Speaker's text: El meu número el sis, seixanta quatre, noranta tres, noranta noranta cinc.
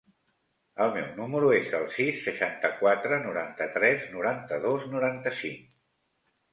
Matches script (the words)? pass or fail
fail